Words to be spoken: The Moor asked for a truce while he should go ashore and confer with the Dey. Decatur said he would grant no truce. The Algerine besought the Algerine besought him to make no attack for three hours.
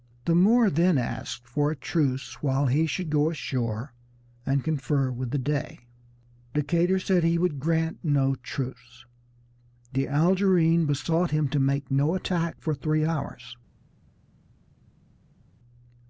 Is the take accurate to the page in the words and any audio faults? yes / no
no